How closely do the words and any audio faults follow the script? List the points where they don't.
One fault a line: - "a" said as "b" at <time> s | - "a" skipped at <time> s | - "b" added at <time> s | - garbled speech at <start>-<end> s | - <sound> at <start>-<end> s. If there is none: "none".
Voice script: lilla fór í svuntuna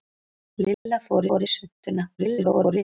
- dropout at 0.7-0.9 s
- "fór" added at 1.3 s
- garbled speech at 2.2-2.8 s